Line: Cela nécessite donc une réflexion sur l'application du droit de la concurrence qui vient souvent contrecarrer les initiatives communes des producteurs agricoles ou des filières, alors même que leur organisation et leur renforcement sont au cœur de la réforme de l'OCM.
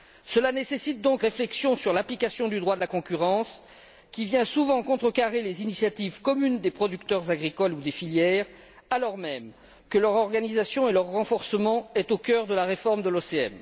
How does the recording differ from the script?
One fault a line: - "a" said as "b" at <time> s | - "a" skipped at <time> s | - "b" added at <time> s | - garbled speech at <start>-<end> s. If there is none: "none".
- "une" skipped at 1.2 s